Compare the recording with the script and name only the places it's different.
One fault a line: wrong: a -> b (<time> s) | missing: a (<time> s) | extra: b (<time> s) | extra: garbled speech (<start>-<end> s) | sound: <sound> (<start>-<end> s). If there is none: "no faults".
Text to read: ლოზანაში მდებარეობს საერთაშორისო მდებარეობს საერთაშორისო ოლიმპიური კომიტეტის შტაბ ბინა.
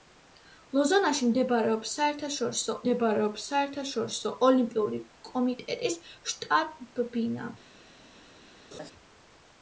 sound: laugh (8.7-8.9 s)